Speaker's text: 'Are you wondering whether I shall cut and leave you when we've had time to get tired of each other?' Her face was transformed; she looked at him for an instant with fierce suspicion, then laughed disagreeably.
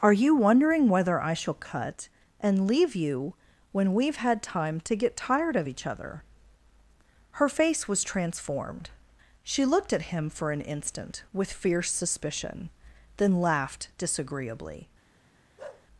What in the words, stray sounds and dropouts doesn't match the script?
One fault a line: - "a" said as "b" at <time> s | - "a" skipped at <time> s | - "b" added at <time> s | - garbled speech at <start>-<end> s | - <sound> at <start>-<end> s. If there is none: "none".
- bark at 15.6-15.9 s